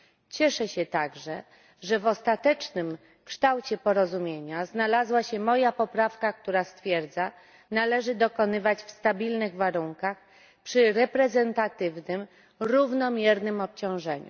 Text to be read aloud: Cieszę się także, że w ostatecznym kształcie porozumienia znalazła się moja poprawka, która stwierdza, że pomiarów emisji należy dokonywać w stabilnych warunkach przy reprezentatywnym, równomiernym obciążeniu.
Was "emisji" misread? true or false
true